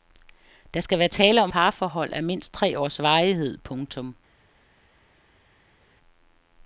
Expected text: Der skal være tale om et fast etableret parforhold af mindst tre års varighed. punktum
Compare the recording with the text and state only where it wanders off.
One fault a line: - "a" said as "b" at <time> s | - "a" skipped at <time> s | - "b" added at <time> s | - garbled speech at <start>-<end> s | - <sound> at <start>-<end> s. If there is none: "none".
- "et fast etableret" skipped at 1.5 s